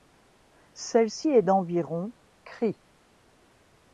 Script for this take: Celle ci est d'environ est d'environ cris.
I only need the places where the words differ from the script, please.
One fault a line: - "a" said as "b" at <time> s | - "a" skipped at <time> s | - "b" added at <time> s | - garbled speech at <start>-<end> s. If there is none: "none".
- "est d'environ" skipped at 2.1 s